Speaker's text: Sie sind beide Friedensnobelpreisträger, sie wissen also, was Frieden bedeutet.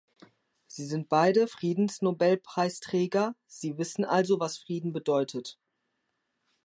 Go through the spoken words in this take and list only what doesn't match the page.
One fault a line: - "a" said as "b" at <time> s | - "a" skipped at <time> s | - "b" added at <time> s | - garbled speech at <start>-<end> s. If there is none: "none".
none